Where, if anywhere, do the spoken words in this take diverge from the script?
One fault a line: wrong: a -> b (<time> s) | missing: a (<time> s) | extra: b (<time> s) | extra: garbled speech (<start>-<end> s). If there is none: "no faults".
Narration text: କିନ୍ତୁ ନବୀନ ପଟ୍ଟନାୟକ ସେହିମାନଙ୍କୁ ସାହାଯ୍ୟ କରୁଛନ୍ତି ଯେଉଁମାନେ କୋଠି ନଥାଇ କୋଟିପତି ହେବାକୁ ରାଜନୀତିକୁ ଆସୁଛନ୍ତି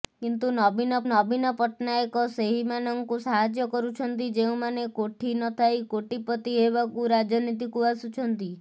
extra: ନବୀନ (1.1 s)